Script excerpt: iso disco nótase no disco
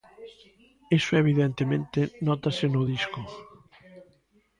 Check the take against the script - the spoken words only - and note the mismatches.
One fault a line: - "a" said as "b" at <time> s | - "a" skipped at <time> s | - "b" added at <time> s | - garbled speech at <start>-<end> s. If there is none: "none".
- "disco" said as "evidentemente" at 1.2 s